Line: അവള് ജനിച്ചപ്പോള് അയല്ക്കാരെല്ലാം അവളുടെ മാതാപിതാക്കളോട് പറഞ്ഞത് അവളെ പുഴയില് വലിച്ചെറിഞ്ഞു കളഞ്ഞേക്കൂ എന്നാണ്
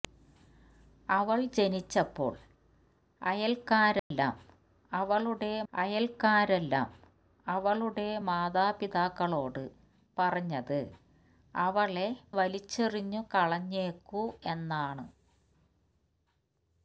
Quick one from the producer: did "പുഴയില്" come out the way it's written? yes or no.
no